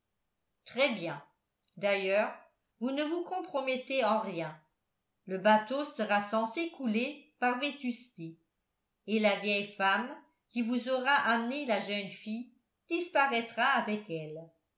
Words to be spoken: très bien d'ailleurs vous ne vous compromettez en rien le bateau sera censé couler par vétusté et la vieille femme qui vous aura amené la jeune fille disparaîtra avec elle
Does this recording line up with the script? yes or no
yes